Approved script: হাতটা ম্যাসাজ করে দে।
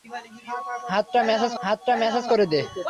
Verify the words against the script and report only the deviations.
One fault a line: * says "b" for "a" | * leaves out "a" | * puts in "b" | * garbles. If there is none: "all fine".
* puts in "হাতটা ম্যাসাজ"